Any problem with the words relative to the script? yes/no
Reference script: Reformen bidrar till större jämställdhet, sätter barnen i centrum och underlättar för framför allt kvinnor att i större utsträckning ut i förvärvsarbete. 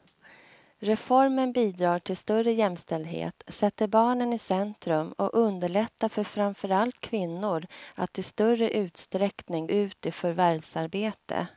no